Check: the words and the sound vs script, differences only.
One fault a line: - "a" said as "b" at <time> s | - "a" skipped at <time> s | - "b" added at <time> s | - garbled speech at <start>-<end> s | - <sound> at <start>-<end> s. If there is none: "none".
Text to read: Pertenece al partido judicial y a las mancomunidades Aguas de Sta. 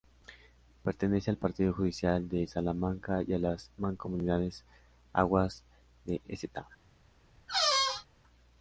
- "de Salamanca" added at 2.3 s
- squeak at 7.5-8.1 s